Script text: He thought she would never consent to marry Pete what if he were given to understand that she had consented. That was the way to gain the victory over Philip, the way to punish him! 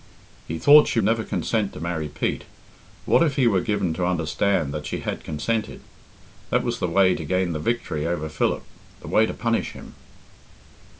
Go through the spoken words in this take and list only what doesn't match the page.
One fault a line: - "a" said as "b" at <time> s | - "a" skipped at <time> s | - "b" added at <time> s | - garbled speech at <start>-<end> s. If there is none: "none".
- "would" skipped at 1.0 s